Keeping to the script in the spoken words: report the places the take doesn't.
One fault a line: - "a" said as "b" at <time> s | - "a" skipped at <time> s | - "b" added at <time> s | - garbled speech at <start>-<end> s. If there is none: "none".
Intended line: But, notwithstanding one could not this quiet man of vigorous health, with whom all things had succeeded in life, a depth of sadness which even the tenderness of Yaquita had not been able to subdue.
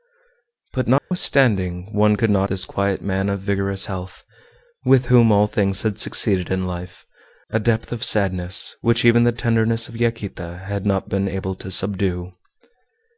none